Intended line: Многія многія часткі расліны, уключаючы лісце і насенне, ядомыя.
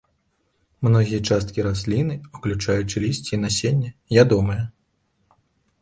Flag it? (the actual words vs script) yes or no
yes